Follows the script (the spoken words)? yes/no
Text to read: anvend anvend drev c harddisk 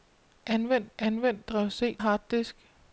yes